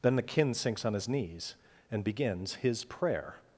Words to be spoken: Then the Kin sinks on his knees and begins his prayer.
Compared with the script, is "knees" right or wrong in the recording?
right